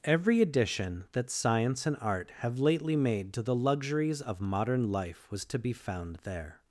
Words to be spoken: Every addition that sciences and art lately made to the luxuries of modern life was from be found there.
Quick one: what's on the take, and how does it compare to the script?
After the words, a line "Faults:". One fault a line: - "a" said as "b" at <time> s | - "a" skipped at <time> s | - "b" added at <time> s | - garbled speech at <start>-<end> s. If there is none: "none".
Every addition that science and art have lately made to the luxuries of modern life was to be found there.
Faults:
- "sciences" said as "science" at 1.3 s
- "have" added at 2.4 s
- "from" said as "to" at 5.5 s